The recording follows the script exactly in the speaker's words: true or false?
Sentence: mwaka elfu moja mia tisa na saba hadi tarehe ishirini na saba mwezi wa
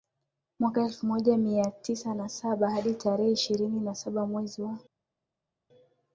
true